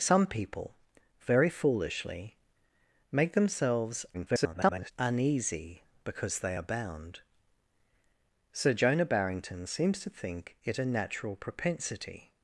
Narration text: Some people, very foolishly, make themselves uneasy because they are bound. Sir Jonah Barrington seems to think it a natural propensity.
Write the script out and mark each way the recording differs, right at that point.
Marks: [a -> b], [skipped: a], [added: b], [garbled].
Some people, very foolishly, make themselves [garbled] uneasy because they are bound. Sir Jonah Barrington seems to think it a natural propensity.